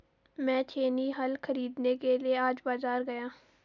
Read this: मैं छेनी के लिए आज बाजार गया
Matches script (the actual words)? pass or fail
fail